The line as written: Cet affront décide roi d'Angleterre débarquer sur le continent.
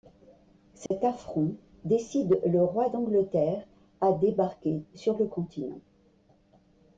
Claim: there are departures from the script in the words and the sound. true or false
true